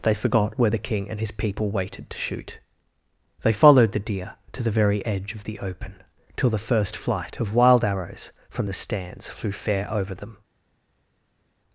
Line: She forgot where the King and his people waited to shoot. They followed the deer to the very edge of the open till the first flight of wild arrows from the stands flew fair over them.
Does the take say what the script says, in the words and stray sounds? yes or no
no